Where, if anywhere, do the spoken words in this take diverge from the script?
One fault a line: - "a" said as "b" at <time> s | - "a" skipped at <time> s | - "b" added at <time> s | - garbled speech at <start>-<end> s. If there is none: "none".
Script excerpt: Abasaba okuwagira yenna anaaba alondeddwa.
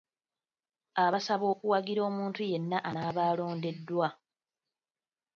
- "omuntu" added at 2.1 s